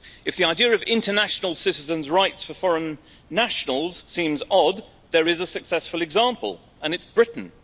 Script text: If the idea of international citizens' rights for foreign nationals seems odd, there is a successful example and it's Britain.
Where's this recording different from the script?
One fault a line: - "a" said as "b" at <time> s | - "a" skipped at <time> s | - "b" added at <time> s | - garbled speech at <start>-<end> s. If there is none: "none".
none